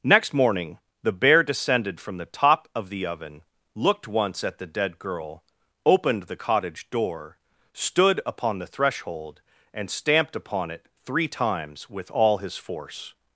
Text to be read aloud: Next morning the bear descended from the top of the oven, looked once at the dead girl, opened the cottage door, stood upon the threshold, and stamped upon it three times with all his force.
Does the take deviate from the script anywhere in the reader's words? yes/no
no